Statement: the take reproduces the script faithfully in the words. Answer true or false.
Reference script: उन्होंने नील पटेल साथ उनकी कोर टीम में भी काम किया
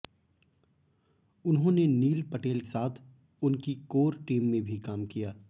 true